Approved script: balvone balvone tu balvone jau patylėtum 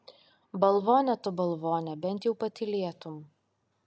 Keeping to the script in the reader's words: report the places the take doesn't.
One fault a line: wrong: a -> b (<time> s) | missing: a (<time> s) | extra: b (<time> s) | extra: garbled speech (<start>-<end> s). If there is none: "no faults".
missing: balvone (1.1 s)
extra: bent (2.0 s)